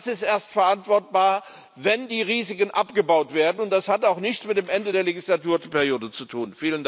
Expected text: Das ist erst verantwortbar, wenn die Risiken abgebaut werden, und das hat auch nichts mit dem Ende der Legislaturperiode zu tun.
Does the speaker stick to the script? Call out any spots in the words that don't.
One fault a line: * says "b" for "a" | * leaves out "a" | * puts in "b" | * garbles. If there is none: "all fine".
all fine